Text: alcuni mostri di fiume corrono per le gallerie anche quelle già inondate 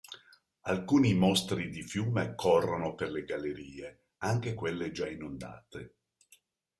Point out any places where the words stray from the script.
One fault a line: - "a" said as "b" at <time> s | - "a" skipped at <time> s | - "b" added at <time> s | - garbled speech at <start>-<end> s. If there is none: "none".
none